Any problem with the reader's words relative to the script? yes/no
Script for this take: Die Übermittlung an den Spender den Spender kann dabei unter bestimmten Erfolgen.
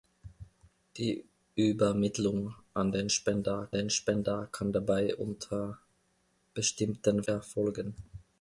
no